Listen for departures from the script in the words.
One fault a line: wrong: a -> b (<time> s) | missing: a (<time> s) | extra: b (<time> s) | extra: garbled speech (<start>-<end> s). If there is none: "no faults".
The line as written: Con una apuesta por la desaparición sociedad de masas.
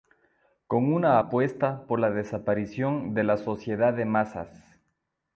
extra: de la (3.1 s)